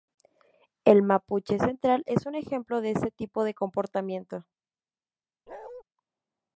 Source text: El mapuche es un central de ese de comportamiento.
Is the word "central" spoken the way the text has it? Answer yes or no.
no